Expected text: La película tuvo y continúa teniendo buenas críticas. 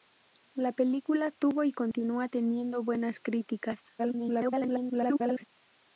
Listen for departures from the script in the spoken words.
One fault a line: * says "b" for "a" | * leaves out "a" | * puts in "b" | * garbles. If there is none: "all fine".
* garbles